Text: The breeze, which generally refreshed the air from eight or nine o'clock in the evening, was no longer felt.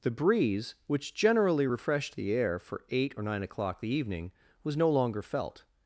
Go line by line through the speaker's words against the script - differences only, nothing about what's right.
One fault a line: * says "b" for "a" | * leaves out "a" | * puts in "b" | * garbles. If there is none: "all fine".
* says "for" for "from"
* leaves out "in"